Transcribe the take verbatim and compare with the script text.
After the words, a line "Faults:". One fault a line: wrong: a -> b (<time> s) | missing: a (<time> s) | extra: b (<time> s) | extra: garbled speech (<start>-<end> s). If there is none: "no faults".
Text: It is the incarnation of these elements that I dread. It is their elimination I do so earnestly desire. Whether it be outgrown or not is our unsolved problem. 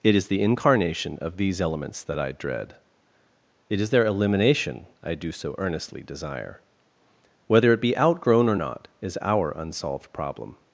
It is the incarnation of these elements that I dread. It is their elimination I do so earnestly desire. Whether it be outgrown or not is our unsolved problem.
Faults:
no faults